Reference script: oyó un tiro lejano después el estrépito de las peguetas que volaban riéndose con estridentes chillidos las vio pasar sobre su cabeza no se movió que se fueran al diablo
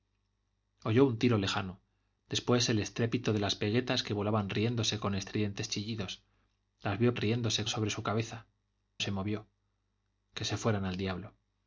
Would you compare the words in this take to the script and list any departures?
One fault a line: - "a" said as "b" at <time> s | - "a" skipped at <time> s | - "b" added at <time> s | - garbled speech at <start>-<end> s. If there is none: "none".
- "pasar" said as "riéndose" at 7.2 s
- "no" skipped at 8.5 s